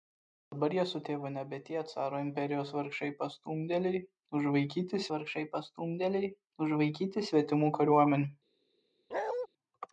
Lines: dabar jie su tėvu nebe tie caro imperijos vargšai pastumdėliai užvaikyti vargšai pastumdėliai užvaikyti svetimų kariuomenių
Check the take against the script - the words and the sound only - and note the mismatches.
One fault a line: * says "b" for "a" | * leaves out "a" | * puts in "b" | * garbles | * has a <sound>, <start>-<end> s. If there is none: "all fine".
* has a bark, 9.1-9.5 s